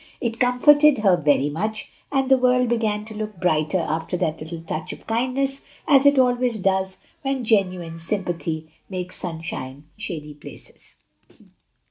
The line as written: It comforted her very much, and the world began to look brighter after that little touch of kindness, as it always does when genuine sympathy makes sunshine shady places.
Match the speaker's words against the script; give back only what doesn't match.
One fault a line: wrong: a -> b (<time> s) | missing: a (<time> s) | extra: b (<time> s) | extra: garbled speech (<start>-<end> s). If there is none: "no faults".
no faults